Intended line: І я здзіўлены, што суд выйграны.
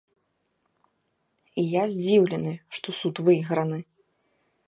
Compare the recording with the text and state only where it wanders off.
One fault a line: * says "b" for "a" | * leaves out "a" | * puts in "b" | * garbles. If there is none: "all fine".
all fine